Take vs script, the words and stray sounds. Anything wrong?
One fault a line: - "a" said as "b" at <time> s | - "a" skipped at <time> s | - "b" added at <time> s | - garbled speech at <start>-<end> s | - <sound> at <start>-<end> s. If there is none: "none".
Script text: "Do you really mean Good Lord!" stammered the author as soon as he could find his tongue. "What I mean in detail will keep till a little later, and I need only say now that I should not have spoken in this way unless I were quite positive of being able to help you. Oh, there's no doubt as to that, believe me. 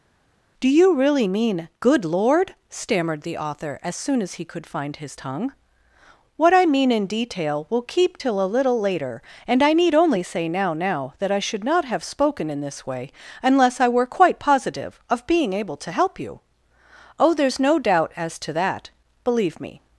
- "now" added at 10.7 s